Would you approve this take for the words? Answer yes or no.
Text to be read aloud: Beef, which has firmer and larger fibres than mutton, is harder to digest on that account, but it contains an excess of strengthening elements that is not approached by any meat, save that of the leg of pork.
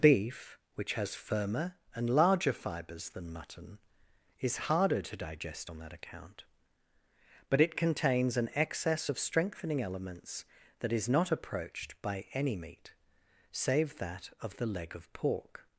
yes